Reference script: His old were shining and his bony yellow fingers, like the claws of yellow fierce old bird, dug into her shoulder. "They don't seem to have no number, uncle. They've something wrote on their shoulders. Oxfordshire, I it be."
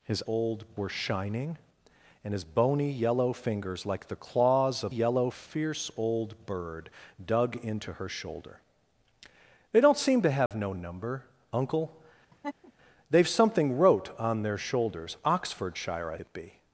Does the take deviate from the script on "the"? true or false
false